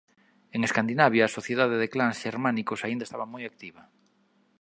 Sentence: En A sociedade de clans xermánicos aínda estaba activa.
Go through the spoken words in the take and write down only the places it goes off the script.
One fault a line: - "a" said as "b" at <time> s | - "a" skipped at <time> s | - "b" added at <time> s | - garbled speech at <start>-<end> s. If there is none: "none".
- "Escandinavia" added at 0.7 s
- "moi" added at 3.3 s